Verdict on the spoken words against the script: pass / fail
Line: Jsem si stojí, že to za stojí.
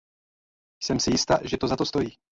fail